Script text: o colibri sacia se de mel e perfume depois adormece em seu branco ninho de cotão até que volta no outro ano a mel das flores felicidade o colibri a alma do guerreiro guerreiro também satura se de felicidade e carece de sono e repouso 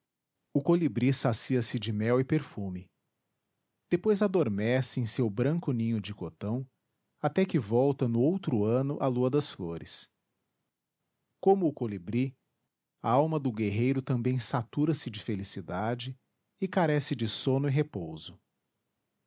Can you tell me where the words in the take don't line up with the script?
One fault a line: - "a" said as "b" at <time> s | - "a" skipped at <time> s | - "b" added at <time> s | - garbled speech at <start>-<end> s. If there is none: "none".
- "mel" said as "lua" at 9.1 s
- "felicidade" said as "como" at 11.4 s
- "guerreiro" skipped at 14.0 s